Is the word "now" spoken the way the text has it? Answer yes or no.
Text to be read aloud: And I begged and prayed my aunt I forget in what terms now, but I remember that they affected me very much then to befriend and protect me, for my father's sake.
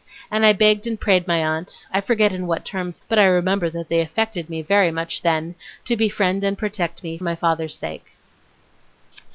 no